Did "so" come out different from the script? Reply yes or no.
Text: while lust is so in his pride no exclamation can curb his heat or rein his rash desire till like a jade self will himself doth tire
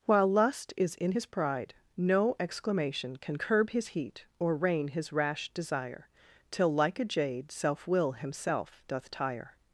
yes